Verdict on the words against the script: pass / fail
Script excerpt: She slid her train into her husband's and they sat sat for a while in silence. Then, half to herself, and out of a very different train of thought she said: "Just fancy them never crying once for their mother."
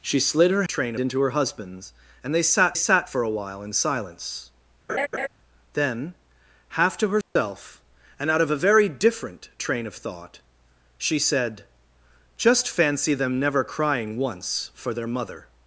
pass